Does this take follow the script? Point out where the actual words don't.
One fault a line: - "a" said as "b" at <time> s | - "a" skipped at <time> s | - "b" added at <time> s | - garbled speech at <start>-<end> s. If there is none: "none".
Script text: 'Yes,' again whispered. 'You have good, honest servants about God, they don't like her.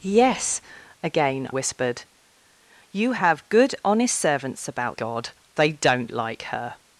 none